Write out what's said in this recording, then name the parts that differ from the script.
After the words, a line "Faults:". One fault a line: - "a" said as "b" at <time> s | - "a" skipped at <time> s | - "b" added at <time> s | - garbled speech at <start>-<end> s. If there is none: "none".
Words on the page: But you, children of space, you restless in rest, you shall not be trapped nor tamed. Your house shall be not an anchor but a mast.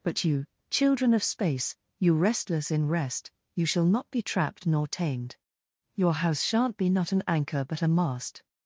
But you, children of space, you restless in rest, you shall not be trapped nor tamed. Your house shan't be not an anchor but a mast.
Faults:
- "shall" said as "shan't" at 6.4 s